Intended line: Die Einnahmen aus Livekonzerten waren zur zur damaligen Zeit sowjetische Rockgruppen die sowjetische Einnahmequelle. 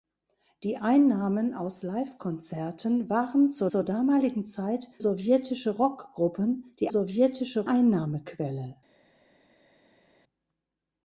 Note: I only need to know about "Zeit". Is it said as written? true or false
true